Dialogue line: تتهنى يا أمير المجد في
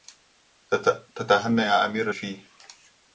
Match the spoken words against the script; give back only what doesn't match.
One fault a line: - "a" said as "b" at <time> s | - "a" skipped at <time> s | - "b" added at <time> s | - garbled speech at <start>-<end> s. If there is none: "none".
- "المجد" skipped at 2.1 s